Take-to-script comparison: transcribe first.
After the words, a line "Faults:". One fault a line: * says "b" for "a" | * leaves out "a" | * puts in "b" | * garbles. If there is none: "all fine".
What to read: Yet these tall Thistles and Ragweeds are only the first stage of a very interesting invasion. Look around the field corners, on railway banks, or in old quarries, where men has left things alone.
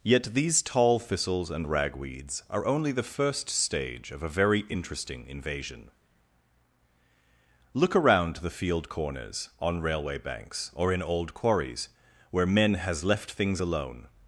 Yet these tall Thistles and Ragweeds are only the first stage of a very interesting invasion. Look around the field corners, on railway banks, or in old quarries, where men has left things alone.
Faults:
all fine